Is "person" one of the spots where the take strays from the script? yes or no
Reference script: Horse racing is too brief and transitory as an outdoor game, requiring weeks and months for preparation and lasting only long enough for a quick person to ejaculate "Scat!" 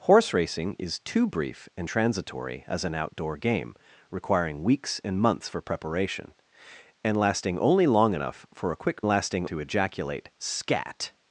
yes